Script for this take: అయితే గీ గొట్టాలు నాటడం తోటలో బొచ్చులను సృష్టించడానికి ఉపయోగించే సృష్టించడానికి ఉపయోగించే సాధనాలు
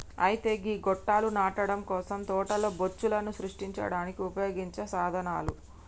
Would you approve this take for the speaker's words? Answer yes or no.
no